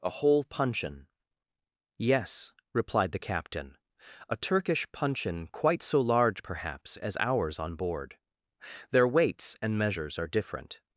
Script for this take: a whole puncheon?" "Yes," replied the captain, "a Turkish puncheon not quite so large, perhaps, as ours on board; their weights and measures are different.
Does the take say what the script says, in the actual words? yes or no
no